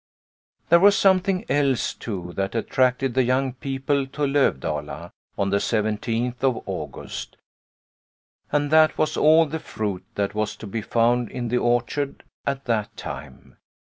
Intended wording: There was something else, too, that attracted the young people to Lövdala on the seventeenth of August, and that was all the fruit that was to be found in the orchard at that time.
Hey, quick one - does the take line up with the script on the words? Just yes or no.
yes